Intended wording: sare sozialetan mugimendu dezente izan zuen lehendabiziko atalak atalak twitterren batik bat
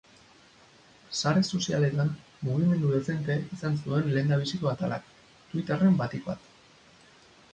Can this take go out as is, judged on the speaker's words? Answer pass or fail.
fail